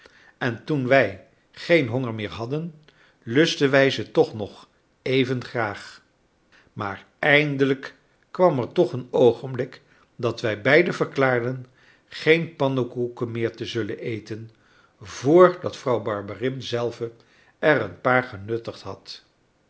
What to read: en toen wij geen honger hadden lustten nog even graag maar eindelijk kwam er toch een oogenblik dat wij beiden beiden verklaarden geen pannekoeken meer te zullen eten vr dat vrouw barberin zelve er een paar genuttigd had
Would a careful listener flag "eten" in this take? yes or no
no